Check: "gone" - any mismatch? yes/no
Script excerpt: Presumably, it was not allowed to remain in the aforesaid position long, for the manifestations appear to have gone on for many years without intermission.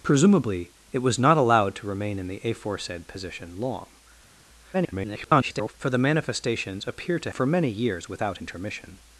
yes